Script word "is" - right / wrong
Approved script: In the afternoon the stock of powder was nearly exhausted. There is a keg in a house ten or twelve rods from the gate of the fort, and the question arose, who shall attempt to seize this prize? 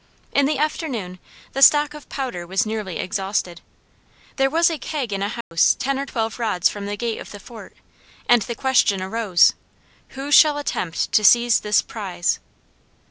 wrong